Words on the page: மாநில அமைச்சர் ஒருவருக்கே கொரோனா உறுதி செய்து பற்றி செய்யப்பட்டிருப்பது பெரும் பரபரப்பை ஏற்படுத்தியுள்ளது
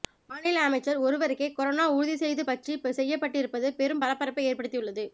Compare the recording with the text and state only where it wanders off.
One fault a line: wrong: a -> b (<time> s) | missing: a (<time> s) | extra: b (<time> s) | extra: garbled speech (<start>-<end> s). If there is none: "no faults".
no faults